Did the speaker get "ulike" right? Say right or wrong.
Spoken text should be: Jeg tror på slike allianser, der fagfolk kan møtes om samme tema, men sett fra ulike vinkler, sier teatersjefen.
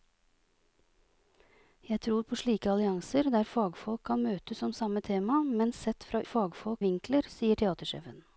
wrong